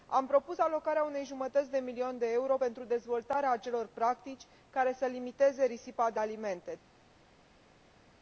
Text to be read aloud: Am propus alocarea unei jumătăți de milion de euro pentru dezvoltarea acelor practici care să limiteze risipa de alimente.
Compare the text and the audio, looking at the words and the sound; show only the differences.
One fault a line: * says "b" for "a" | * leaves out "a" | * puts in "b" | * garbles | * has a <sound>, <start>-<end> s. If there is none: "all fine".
all fine